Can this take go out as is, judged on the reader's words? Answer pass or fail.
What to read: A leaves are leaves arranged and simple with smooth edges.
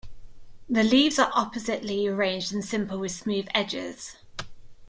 fail